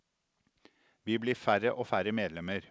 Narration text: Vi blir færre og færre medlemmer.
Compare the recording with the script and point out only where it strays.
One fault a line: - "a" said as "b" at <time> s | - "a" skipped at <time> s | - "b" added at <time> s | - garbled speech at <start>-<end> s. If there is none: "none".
none